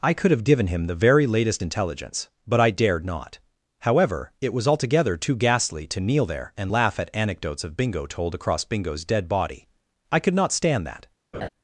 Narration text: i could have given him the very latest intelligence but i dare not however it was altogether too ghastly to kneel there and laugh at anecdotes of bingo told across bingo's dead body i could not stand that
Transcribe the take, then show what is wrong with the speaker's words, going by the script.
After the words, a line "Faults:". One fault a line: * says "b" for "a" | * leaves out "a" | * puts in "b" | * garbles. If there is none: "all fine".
i could have given him the very latest intelligence but i dared not however it was altogether too ghastly to kneel there and laugh at anecdotes of bingo told across bingo's dead body i could not stand that
Faults:
* says "dared" for "dare"